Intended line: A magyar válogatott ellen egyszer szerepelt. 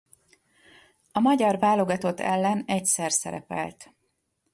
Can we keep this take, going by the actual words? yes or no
yes